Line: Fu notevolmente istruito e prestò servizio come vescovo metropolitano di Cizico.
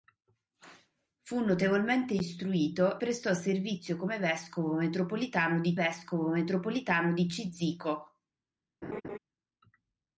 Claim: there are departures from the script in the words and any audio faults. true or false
true